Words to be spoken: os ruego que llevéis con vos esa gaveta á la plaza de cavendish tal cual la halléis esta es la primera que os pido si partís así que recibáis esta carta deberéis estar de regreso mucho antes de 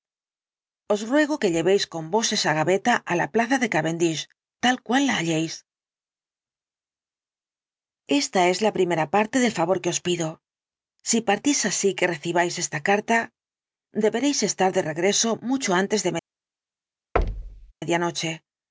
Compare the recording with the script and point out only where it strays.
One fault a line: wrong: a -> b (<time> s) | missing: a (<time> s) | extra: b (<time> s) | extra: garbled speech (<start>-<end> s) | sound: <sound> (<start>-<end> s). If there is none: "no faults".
extra: parte del favor (9.2 s)
sound: thud (17.2-17.7 s)